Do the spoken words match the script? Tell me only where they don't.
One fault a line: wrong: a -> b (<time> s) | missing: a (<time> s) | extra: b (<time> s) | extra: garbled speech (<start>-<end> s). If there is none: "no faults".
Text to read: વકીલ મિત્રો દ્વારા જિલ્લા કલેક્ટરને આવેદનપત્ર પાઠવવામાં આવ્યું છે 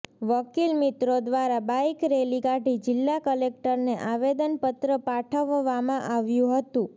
extra: બાઈક રેલી કાઢી (1.6 s)
wrong: છે -> હતું (6.6 s)